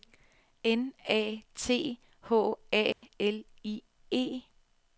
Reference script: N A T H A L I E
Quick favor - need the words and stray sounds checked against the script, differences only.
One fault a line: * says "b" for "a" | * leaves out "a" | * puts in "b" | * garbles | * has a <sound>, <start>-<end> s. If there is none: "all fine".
* has a dropout, 2.9-3.0 s